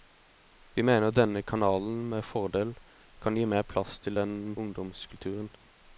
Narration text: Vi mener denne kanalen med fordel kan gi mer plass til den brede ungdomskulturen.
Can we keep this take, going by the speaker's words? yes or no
no